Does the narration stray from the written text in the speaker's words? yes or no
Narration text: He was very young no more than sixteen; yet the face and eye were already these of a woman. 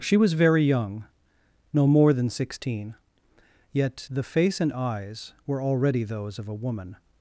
yes